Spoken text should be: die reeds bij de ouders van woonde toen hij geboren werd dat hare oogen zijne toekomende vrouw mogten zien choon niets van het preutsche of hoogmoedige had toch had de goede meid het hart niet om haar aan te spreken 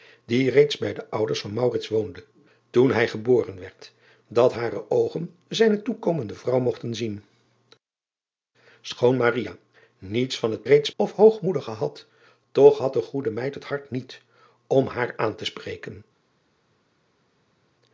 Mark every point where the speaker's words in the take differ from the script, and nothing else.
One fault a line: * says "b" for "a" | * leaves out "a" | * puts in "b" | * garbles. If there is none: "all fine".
* says "reeds" for "preutsche"